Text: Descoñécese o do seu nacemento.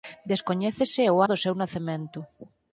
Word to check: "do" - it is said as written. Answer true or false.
true